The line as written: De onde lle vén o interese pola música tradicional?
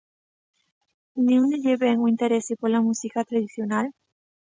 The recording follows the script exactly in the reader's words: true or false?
true